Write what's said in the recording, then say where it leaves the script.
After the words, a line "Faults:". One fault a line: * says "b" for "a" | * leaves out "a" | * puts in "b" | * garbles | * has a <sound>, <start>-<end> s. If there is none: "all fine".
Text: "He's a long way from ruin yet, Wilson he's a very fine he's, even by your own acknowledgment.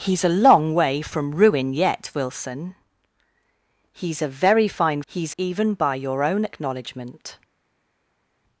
"He's a long way from ruin yet, Wilson he's a very fine he's, even by your own acknowledgment.
Faults:
all fine